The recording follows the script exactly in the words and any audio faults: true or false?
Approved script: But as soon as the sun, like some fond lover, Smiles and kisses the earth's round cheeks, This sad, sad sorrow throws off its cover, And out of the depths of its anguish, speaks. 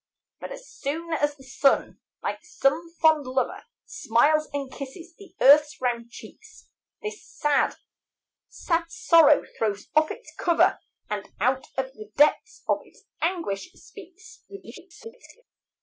false